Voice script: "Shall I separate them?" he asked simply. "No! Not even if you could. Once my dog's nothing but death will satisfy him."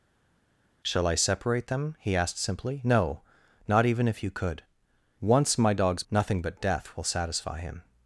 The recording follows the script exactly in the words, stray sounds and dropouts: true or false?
true